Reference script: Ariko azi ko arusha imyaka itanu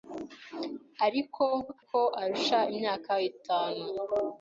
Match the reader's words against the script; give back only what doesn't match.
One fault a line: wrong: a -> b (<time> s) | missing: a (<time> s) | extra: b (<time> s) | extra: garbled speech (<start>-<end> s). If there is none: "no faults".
missing: azi (1.4 s)